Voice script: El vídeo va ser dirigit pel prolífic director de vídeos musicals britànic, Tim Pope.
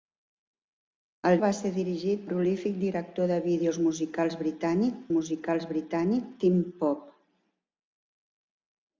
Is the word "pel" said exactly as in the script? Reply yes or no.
no